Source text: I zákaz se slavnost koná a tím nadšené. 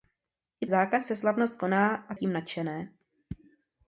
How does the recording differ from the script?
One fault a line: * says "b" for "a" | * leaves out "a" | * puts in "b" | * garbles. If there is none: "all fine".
all fine